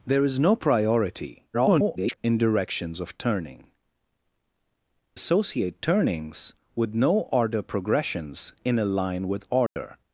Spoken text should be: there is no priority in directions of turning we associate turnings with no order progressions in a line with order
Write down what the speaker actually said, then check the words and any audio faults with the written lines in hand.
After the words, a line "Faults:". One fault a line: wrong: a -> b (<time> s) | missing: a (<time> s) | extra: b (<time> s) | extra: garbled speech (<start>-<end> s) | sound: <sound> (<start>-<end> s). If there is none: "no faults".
there is no priority [garbled] in directions of turning associate turnings with no order progressions in a line with order
Faults:
extra: garbled speech (1.5-2.2 s)
missing: we (3.6 s)
sound: dropout (9.7-9.8 s)